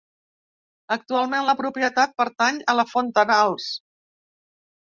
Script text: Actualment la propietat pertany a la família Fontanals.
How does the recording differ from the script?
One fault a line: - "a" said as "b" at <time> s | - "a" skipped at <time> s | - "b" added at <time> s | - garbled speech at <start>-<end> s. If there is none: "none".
- "família" skipped at 2.9 s